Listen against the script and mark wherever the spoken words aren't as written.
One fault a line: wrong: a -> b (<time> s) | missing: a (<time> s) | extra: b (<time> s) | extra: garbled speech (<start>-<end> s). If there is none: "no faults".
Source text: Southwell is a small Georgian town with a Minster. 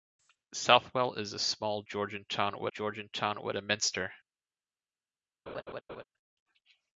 extra: Georgian town with (2.7 s)